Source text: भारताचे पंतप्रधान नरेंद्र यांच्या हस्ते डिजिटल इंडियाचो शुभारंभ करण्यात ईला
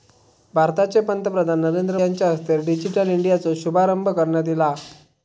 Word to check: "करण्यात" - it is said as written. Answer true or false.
true